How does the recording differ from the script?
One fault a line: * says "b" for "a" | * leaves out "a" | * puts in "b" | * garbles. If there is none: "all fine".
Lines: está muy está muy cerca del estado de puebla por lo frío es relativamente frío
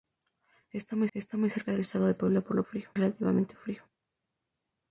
all fine